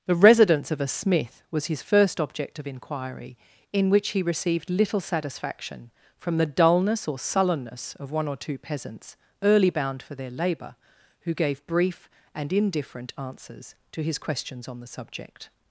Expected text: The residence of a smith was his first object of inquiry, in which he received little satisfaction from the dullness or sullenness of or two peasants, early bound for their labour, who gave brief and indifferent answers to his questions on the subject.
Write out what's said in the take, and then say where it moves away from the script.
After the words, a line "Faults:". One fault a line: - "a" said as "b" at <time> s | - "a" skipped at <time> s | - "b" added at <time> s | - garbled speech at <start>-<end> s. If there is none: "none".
The residence of a smith was his first object of inquiry, in which he received little satisfaction from the dullness or sullenness of one or two peasants, early bound for their labour, who gave brief and indifferent answers to his questions on the subject.
Faults:
- "one" added at 8.1 s